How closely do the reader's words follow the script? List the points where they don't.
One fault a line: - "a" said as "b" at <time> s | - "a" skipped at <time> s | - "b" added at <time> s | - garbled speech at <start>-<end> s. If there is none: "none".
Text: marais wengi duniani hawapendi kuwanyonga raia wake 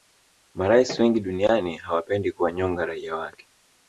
none